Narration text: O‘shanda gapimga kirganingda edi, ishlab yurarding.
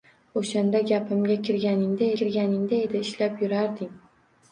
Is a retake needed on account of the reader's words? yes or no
yes